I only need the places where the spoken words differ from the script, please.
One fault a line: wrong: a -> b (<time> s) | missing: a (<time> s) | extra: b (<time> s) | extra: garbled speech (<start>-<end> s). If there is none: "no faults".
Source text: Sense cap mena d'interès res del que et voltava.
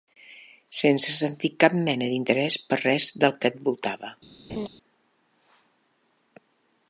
extra: sentir (1.2 s)
extra: per (2.7 s)